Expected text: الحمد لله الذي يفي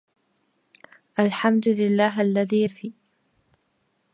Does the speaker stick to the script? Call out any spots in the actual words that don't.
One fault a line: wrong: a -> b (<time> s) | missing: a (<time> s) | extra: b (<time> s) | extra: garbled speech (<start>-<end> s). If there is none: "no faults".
no faults